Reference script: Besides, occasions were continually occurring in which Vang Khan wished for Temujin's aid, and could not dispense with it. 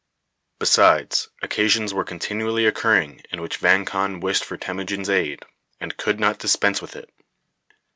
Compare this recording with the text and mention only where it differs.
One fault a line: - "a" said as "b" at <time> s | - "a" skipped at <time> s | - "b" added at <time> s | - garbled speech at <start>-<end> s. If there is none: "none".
none